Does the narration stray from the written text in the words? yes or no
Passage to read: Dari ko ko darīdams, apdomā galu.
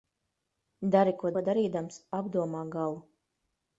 no